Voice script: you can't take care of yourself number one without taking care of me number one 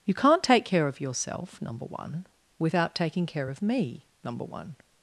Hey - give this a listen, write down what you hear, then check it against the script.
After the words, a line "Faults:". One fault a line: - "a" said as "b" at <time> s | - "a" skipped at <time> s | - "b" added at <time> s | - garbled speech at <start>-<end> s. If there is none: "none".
you can't take care of yourself number one without taking care of me number one
Faults:
none